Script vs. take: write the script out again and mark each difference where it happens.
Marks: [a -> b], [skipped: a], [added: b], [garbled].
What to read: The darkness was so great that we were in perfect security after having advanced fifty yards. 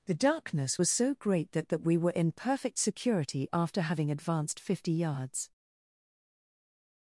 The darkness was so great that [added: that] we were in perfect security after having advanced fifty yards.